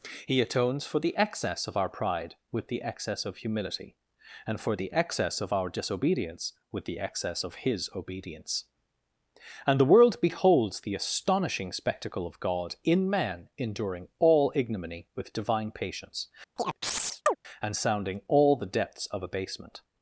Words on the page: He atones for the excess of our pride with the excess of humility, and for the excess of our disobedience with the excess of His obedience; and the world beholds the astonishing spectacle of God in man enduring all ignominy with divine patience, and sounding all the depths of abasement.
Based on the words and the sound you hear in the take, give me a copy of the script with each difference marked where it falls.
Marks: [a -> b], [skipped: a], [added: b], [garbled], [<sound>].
He atones for the excess of our pride with the excess of humility, and for the excess of our disobedience with the excess of His obedience; and the world beholds the astonishing spectacle of God in man enduring all ignominy with divine patience, [chirp] and sounding all the depths of abasement.